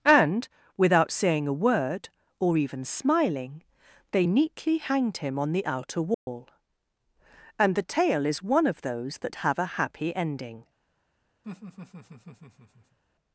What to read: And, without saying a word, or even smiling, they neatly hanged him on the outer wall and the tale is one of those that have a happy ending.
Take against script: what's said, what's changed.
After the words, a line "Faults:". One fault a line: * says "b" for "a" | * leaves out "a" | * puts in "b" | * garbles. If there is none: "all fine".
And, without saying a word, or even smiling, they neatly hanged him on the outer wall and the tale is one of those that have a happy ending.
Faults:
all fine